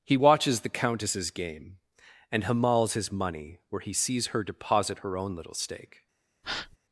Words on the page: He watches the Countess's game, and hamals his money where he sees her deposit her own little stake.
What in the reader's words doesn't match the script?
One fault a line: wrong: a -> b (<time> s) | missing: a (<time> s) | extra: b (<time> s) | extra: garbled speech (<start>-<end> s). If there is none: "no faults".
no faults